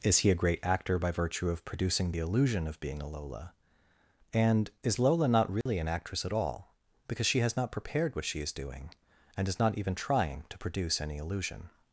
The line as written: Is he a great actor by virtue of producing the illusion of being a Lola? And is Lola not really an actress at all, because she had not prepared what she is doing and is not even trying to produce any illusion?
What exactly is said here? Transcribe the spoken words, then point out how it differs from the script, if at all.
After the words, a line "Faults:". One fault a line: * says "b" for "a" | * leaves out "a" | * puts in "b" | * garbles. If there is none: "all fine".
Is he a great actor by virtue of producing the illusion of being a Lola? And is Lola not really an actress at all, because she has not prepared what she is doing and is not even trying to produce any illusion?
Faults:
* says "has" for "had"